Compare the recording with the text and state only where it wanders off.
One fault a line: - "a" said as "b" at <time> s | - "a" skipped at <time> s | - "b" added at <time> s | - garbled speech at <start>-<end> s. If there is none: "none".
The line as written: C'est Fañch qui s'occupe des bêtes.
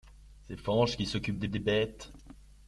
- "des" added at 1.5 s